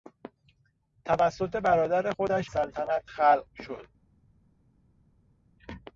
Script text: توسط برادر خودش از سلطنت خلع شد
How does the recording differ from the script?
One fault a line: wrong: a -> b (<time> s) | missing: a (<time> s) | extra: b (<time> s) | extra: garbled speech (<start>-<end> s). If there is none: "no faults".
missing: از (2.5 s)